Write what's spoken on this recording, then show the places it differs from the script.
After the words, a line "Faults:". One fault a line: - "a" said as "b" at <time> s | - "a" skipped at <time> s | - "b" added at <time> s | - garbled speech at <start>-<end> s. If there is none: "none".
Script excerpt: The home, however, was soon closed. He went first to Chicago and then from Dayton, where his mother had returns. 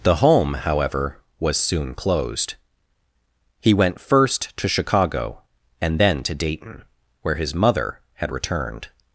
The home, however, was soon closed. He went first to Chicago and then to Dayton, where his mother had returned.
Faults:
- "from" said as "to" at 6.2 s
- "returns" said as "returned" at 8.3 s